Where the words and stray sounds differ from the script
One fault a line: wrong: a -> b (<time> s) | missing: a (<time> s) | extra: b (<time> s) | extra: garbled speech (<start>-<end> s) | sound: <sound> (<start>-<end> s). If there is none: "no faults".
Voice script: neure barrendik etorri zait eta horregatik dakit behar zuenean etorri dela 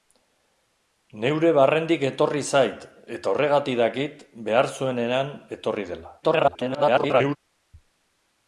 extra: garbled speech (6.2-7.4 s)